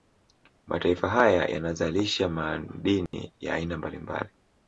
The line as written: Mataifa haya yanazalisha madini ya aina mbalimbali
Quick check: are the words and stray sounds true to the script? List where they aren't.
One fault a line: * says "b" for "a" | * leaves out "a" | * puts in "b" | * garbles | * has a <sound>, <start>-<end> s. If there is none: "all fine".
* has a dropout, 3.1-3.1 s